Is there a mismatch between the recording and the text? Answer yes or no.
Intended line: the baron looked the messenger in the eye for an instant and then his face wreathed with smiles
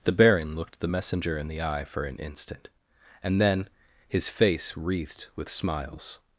no